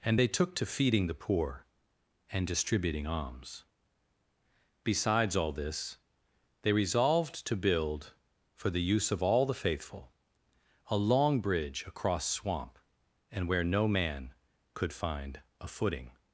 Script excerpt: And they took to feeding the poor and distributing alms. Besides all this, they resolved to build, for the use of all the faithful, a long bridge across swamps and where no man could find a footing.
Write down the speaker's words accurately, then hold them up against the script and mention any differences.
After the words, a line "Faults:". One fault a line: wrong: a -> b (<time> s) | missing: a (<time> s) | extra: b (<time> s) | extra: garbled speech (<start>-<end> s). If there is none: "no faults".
And they took to feeding the poor and distributing alms. Besides all this, they resolved to build, for the use of all the faithful, a long bridge across swamp and where no man could find a footing.
Faults:
wrong: swamps -> swamp (12.3 s)